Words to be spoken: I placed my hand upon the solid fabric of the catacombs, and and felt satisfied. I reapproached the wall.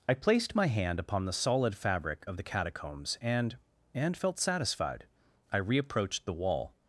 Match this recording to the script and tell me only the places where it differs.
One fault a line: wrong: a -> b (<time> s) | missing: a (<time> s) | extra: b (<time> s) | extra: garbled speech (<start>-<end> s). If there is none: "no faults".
no faults